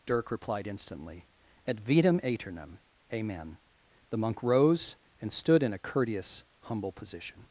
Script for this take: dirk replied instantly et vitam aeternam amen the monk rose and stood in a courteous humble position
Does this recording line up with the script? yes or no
yes